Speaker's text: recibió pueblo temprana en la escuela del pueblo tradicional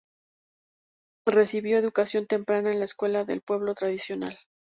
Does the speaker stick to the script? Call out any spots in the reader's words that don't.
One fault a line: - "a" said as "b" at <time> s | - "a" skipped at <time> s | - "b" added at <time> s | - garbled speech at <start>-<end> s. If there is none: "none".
- "pueblo" said as "educación" at 1.8 s